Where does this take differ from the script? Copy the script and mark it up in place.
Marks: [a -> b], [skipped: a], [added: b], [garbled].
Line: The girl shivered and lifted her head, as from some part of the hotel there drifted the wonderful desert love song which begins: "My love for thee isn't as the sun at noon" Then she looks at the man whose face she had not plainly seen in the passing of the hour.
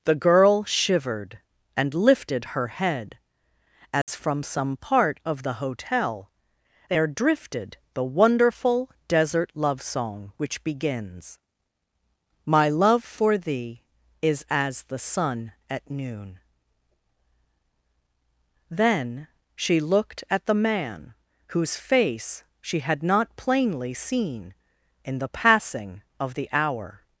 The girl shivered and lifted her head, as from some part of the hotel there drifted the wonderful desert love song which begins: "My love for thee [isn't -> is] as the sun at noon" Then she [looks -> looked] at the man whose face she had not plainly seen in the passing of the hour.